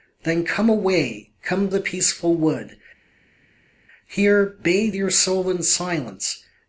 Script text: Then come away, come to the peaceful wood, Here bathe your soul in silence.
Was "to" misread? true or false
true